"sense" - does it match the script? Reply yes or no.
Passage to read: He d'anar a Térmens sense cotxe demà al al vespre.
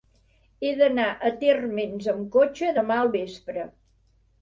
no